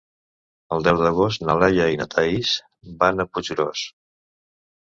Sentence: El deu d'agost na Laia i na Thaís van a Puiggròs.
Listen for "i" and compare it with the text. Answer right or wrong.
right